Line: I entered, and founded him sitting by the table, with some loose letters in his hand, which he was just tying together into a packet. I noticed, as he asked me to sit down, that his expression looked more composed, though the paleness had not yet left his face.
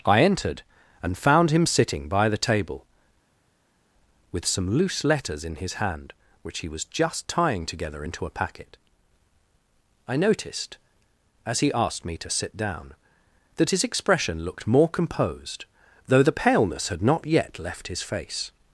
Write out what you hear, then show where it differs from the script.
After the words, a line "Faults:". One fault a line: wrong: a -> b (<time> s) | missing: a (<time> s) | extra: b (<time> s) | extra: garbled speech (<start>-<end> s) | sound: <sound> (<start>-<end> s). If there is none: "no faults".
I entered, and found him sitting by the table, with some loose letters in his hand, which he was just tying together into a packet. I noticed, as he asked me to sit down, that his expression looked more composed, though the paleness had not yet left his face.
Faults:
wrong: founded -> found (1.2 s)